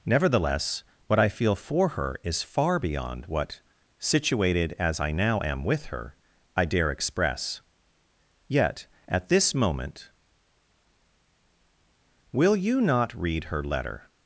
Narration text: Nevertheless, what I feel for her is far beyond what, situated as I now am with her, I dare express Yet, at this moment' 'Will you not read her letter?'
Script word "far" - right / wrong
right